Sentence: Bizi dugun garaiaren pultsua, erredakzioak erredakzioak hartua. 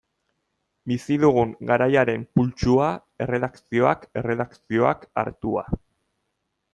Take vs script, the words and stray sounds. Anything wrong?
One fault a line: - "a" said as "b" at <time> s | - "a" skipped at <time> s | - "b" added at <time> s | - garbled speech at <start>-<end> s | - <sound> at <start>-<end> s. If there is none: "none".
none